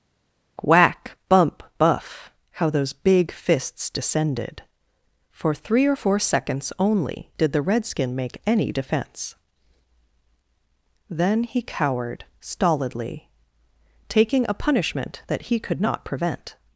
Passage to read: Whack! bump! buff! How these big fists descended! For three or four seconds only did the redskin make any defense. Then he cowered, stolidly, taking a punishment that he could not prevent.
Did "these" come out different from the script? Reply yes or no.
yes